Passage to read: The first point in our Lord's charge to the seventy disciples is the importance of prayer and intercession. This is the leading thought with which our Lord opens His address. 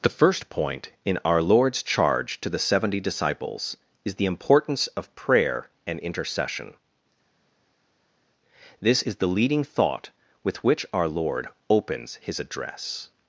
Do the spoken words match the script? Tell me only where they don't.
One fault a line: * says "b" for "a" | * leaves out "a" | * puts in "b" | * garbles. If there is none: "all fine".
all fine